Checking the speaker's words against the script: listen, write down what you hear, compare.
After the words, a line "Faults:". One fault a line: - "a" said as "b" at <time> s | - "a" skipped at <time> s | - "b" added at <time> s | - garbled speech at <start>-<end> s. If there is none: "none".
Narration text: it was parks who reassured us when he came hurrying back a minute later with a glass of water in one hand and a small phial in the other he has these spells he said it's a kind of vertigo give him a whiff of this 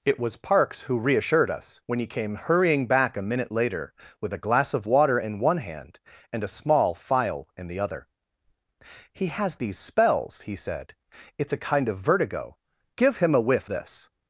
it was parks who reassured us when he came hurrying back a minute later with a glass of water in one hand and a small phial in the other he has these spells he said it's a kind of vertigo give him a whiff this
Faults:
- "of" skipped at 13.7 s